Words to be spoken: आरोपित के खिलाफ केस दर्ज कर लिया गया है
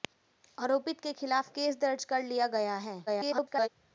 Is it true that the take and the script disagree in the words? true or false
true